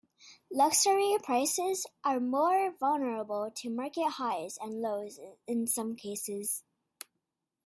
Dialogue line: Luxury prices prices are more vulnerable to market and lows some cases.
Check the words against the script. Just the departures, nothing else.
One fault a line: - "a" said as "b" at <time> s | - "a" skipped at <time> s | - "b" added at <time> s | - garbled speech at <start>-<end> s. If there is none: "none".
- "prices" skipped at 1.9 s
- "highs" added at 4.1 s
- "in" added at 5.5 s